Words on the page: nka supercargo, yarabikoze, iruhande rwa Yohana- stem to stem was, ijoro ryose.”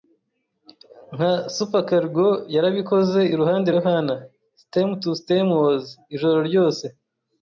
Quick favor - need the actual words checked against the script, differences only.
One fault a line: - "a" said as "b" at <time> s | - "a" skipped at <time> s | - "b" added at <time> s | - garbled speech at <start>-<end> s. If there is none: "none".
- "rwa" skipped at 3.7 s